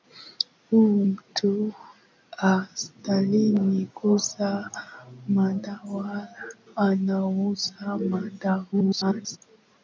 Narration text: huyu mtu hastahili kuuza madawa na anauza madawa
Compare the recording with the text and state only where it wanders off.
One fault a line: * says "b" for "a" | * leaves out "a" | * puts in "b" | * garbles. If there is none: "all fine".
* leaves out "na"
* garbles